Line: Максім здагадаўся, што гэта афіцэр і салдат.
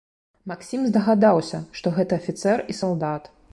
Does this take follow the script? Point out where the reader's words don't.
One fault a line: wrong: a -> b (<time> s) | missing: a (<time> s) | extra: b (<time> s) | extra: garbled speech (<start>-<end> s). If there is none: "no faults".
no faults